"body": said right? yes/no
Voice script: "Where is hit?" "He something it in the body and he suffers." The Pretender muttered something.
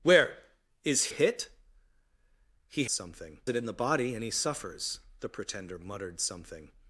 yes